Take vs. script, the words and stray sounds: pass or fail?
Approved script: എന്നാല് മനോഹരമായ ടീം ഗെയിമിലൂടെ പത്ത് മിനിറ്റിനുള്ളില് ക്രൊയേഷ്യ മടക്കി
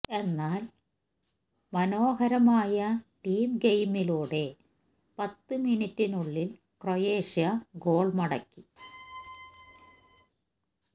fail